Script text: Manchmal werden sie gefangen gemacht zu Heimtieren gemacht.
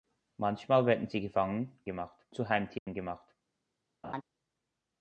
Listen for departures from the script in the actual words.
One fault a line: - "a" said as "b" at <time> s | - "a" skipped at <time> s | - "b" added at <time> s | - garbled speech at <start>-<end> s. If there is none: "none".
none